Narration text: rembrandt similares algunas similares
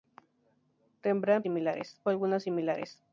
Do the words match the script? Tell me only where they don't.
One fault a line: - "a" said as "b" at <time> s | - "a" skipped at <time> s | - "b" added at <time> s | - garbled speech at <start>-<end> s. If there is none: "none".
none